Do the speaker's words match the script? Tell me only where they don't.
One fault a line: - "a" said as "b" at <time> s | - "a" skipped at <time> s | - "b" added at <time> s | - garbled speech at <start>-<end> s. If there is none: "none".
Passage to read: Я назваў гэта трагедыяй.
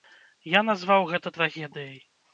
none